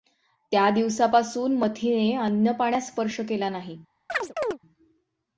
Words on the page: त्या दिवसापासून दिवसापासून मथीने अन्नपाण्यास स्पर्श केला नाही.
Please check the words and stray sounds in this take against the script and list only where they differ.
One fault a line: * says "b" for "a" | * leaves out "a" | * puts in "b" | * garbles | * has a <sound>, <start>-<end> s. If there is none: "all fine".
* leaves out "दिवसापासून"
* has a chirp, 4.1-4.6 s